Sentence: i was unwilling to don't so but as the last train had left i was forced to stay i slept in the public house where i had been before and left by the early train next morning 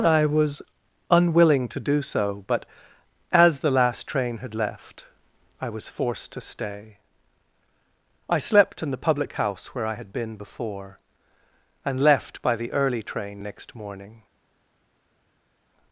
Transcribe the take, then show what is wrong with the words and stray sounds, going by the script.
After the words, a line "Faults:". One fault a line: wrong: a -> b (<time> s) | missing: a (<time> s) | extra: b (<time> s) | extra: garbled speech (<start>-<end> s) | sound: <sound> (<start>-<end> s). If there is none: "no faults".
i was unwilling to do so but as the last train had left i was forced to stay i slept in the public house where i had been before and left by the early train next morning
Faults:
wrong: don't -> do (1.8 s)